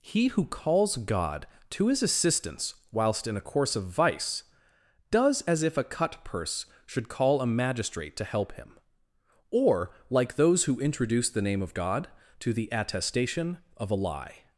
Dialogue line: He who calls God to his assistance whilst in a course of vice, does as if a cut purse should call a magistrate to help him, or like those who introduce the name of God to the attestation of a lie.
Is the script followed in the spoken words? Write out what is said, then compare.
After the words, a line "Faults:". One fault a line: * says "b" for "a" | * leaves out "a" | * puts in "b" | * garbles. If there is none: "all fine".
He who calls God to his assistance whilst in a course of vice, does as if a cut purse should call a magistrate to help him, or like those who introduce the name of God to the attestation of a lie.
Faults:
all fine